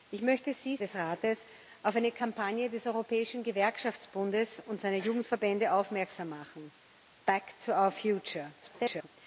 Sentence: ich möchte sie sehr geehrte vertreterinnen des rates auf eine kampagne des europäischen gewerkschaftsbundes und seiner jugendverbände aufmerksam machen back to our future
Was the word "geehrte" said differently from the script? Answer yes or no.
yes